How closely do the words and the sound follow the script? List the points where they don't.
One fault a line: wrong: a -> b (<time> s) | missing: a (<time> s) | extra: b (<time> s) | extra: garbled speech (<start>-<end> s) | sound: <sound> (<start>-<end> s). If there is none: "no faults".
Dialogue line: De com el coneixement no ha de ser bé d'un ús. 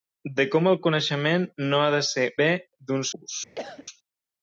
sound: cough (3.6-3.9 s)